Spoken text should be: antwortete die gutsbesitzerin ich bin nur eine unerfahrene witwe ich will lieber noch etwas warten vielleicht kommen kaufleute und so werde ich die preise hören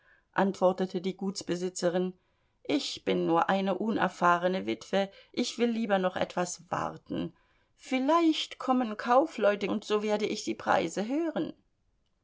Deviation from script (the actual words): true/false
false